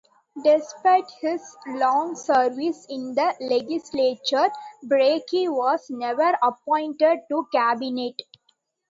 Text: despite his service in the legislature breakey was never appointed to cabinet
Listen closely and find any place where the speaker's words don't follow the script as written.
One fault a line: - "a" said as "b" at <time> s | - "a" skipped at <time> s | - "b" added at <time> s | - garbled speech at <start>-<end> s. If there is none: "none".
- "long" added at 1.7 s